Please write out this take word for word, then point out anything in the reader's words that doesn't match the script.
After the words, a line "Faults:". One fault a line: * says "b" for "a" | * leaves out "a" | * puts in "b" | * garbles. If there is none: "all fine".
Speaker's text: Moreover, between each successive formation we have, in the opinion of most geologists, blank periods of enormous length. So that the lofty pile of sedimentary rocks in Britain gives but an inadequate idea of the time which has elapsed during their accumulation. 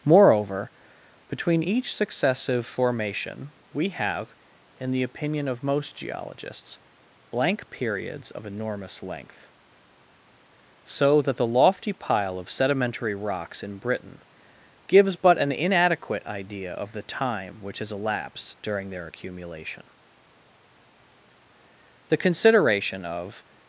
Moreover, between each successive formation we have, in the opinion of most geologists, blank periods of enormous length. So that the lofty pile of sedimentary rocks in Britain gives but an inadequate idea of the time which has elapsed during their accumulation. The consideration of
Faults:
* puts in "The consideration of"